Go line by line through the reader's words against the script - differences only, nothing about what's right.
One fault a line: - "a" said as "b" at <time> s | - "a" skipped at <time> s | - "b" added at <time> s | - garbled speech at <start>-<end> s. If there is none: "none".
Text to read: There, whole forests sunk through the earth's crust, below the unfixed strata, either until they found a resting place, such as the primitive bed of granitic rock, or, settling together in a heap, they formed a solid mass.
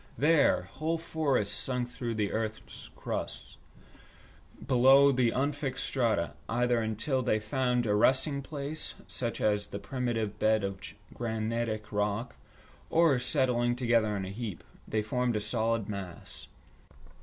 none